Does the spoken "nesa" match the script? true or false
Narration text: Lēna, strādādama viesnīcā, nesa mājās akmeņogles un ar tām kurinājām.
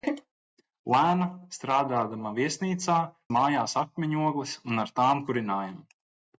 false